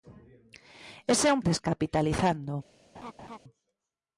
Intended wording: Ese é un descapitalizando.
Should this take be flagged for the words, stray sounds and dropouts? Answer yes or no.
yes